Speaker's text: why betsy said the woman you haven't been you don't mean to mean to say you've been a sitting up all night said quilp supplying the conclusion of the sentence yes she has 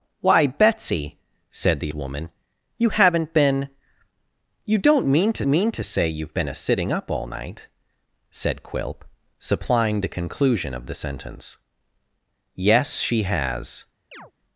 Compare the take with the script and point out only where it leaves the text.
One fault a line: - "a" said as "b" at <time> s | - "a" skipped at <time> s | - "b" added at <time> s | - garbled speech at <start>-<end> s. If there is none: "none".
none